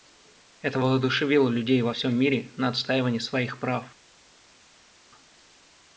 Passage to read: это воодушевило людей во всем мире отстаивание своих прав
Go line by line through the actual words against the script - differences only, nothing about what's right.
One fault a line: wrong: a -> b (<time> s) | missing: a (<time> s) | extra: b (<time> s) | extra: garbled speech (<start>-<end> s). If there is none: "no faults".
extra: на (2.5 s)